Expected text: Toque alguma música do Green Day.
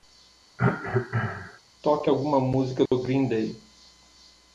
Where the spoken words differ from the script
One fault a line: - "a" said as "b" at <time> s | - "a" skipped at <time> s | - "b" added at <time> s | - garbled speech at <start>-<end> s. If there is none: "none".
none